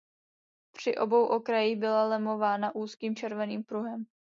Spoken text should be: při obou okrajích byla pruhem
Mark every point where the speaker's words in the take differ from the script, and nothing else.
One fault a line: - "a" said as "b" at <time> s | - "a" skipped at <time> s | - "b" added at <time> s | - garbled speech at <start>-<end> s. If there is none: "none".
- "lemována úzkým červeným" added at 2.1 s